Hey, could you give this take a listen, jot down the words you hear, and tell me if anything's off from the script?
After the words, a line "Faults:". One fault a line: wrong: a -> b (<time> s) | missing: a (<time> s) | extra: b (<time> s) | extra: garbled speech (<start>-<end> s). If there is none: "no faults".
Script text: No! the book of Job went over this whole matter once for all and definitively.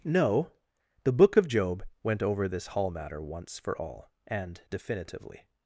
No! the book of Job went over this hall matter once for all and definitively.
Faults:
wrong: whole -> hall (2.7 s)